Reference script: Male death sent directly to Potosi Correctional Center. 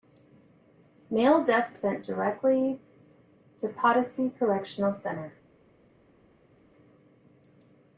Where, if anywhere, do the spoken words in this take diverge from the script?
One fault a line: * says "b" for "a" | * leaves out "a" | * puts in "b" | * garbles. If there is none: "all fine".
all fine